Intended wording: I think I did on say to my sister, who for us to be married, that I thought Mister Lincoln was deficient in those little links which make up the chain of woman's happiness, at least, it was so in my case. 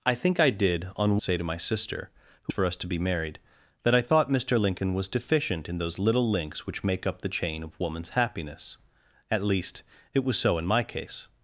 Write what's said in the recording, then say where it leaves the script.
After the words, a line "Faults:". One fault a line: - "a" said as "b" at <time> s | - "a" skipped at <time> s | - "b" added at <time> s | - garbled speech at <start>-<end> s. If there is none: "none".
I think I did on say to my sister, who for us to be married, that I thought Mister Lincoln was deficient in those little links which make up the chain of woman's happiness, at least, it was so in my case.
Faults:
none